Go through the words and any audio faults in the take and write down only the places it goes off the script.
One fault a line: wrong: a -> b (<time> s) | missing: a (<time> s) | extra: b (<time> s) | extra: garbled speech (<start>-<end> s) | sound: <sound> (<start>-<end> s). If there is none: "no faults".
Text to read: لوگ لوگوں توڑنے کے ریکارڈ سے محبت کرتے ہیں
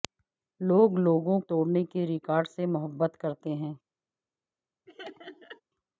sound: laugh (4.9-5.6 s)